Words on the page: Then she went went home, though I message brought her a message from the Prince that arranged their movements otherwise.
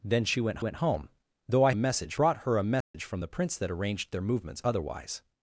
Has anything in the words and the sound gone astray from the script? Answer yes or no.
yes